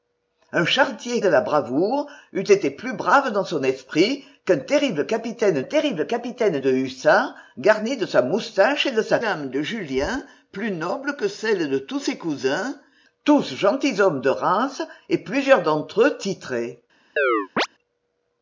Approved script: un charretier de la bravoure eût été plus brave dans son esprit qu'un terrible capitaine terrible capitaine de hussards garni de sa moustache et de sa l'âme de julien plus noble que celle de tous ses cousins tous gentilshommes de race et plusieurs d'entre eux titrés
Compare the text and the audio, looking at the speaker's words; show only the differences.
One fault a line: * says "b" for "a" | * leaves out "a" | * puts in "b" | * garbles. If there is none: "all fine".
all fine